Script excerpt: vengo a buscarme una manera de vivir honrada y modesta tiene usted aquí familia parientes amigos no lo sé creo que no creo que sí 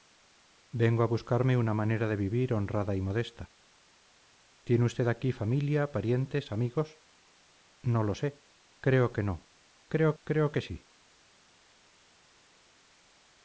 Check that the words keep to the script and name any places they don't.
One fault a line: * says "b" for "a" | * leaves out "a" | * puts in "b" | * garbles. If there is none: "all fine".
* puts in "creo"